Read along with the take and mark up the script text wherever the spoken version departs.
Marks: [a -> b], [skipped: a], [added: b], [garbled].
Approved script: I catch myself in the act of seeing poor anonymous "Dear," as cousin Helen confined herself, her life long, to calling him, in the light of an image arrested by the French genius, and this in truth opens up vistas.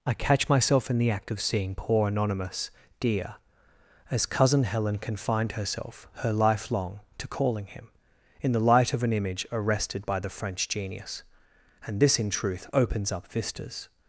I catch myself in the act of seeing poor anonymous "Dear," as cousin Helen confined herself, her life long, to calling him, in the light of an image arrested by the French genius, and this in truth opens up vistas.